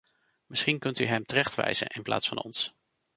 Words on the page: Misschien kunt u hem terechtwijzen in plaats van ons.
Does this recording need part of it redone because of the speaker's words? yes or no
no